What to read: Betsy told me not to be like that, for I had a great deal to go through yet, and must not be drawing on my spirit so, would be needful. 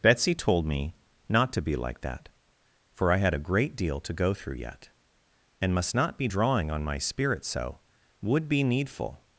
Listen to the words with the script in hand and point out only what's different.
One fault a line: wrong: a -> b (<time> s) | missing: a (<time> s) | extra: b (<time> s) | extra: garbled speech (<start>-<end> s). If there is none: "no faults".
no faults